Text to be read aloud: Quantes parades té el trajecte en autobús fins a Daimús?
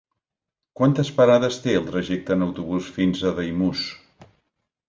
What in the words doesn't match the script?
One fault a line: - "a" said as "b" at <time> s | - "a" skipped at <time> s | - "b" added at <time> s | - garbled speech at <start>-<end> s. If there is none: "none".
none